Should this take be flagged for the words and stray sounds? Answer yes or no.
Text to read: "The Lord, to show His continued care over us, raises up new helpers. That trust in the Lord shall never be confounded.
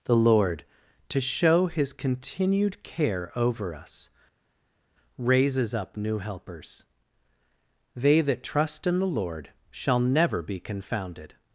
yes